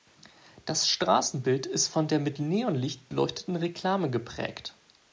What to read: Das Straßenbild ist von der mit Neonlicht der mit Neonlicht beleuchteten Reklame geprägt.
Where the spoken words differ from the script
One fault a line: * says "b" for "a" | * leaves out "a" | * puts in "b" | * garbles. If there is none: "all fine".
* leaves out "der mit Neonlicht"